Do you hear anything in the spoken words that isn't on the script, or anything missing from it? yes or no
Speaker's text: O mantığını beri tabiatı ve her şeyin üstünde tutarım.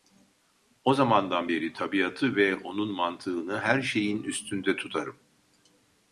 yes